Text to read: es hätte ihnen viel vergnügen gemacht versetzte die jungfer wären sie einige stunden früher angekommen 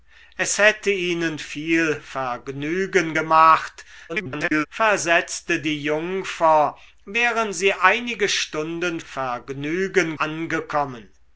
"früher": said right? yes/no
no